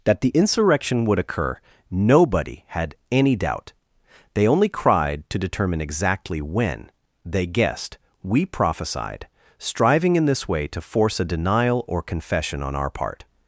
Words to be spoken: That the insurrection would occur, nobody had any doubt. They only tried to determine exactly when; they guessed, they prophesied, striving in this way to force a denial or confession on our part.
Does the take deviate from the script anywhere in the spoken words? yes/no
yes